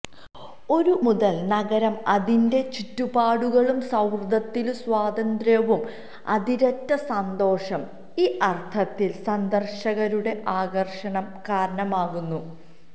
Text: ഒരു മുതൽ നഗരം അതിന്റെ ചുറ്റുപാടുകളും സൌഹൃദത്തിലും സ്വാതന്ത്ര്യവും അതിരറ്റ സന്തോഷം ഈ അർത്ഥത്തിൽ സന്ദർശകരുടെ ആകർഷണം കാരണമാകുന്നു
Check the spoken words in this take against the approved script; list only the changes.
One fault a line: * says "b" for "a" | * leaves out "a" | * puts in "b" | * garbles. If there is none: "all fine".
all fine